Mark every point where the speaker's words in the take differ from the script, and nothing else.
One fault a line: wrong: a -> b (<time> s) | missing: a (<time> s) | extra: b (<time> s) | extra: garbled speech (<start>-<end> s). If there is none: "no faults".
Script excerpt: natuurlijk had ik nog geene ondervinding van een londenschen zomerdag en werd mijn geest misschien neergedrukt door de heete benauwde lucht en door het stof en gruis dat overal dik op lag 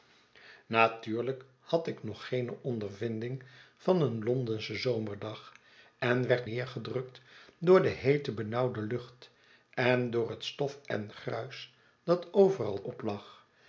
missing: mijn geest misschien (6.5 s)
missing: dik (12.8 s)